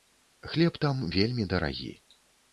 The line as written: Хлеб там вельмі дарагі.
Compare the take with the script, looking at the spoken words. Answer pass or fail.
pass